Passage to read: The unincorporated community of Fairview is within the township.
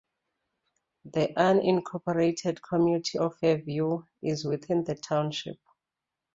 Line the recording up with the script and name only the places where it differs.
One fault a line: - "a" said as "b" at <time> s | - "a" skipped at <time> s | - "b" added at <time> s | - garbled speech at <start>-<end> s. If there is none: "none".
none